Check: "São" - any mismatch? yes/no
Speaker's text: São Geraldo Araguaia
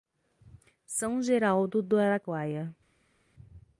no